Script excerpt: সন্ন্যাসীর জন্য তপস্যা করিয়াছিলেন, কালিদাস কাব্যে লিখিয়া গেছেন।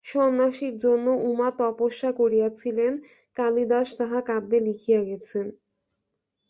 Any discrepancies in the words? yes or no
yes